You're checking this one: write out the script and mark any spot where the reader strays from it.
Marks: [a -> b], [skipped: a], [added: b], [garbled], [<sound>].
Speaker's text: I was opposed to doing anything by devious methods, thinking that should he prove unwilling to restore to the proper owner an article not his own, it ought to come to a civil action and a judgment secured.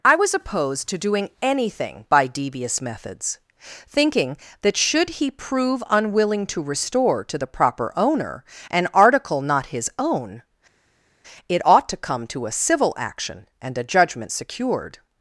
I was opposed to doing anything by devious methods, thinking that should he prove unwilling to restore to the proper owner an article not his own, it ought to come to a civil action and a judgment secured.